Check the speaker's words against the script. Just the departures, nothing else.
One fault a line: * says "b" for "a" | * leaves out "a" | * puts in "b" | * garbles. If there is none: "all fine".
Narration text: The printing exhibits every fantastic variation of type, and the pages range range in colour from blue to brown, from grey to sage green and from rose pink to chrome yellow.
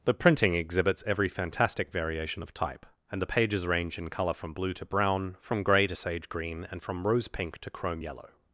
* leaves out "range"